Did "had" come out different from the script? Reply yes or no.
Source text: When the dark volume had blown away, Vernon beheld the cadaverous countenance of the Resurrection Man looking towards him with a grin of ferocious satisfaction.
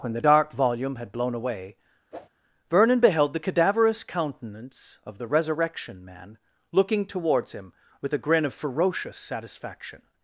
no